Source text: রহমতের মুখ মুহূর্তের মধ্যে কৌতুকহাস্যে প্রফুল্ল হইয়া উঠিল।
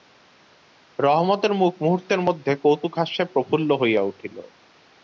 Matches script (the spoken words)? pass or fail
pass